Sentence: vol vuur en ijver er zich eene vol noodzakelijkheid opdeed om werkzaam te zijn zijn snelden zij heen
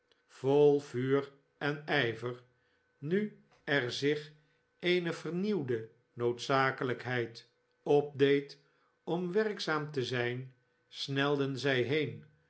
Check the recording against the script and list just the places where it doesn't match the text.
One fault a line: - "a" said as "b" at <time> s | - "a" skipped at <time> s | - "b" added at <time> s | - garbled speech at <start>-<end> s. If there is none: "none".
- "nu" added at 3.0 s
- "vol" said as "vernieuwde" at 5.1 s
- "zijn" skipped at 10.5 s